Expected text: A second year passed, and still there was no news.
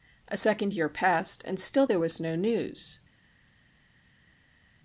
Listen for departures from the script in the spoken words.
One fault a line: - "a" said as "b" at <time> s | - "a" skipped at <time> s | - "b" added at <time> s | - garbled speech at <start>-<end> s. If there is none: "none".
none